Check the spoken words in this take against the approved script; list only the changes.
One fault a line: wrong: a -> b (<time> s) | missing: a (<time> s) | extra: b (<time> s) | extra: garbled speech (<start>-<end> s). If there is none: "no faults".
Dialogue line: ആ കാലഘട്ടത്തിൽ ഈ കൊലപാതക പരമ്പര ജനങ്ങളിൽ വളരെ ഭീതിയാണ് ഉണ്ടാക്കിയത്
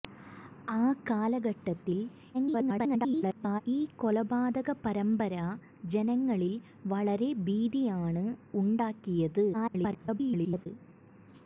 extra: garbled speech (2.3-3.6 s)
extra: garbled speech (9.5-10.7 s)